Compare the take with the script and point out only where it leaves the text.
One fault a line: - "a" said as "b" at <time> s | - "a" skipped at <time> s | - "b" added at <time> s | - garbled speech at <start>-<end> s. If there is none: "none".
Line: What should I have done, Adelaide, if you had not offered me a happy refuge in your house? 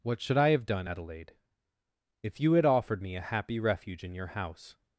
- "not" skipped at 2.6 s